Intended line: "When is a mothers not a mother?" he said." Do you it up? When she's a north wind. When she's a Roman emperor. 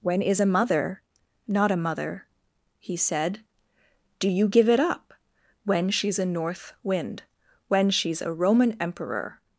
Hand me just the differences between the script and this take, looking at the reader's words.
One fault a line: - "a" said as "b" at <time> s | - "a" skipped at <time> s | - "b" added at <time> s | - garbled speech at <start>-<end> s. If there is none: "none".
- "mothers" said as "mother" at 0.5 s
- "give" added at 4.5 s